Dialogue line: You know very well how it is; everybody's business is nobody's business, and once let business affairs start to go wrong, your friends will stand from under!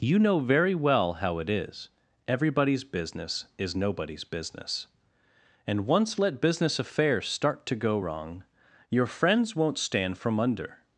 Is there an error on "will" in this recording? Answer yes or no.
yes